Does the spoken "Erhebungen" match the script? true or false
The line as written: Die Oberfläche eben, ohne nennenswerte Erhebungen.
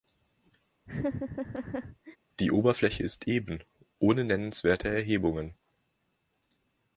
true